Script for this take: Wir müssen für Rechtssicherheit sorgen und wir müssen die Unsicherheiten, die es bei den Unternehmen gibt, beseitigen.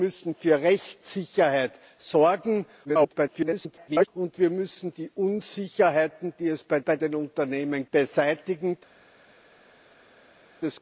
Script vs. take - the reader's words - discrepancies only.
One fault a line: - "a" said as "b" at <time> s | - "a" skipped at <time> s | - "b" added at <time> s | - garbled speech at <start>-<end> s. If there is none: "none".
- garbled speech at 2.8-4.1 s
- "bei" added at 6.8 s
- "gibt" skipped at 7.9 s